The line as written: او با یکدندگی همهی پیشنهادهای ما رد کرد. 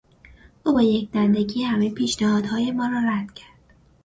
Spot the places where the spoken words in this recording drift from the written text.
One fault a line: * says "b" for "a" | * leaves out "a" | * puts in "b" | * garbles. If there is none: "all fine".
* puts in "را"